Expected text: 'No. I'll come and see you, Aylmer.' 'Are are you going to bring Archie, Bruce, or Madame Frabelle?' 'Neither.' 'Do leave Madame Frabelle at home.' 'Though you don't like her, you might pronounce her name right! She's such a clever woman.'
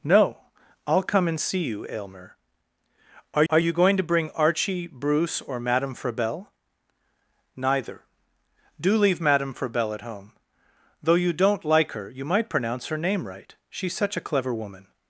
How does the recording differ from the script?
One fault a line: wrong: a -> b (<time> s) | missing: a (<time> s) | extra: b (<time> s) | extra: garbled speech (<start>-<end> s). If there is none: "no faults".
no faults